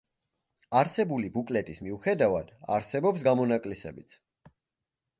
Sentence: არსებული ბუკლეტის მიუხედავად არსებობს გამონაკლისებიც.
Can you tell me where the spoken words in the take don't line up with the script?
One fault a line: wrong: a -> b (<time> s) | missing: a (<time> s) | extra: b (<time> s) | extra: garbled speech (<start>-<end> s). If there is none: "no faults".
no faults